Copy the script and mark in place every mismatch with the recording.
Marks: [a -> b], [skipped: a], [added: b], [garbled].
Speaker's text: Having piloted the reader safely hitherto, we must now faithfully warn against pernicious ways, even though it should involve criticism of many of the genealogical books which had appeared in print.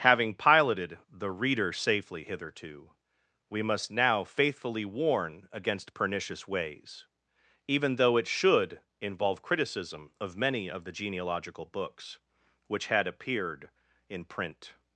Having piloted the reader safely hitherto, we must now faithfully warn against pernicious ways, even though it should involve criticism of many of the genealogical books which had appeared in print.